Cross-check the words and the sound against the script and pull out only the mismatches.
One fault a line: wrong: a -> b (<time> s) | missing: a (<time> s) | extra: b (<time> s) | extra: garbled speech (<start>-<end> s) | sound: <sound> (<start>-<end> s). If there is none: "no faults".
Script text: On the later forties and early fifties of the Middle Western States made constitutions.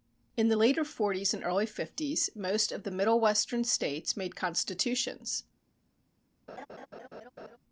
wrong: On -> In (0.3 s)
extra: most (2.3 s)
sound: laugh (6.5-7.6 s)